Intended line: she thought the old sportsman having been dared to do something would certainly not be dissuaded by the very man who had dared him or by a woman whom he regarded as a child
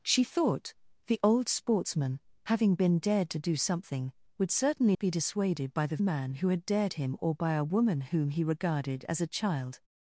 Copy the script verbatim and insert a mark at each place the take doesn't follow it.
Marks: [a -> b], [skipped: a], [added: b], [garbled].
she thought the old sportsman having been dared to do something would certainly [skipped: not] be dissuaded by the [skipped: very] man who had dared him or by a woman whom he regarded as a child